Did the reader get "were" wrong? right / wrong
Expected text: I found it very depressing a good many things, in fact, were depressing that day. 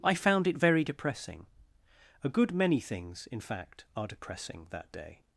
wrong